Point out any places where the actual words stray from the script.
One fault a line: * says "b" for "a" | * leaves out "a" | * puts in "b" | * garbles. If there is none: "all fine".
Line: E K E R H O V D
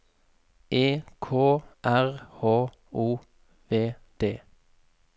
* leaves out "E"